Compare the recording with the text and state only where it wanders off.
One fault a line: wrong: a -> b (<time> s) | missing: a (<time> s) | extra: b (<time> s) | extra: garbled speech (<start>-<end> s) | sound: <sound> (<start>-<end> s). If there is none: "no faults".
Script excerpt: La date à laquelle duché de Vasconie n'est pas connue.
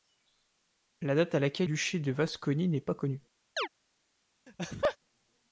sound: chirp (3.6-3.7 s)
sound: laugh (4.5-5.0 s)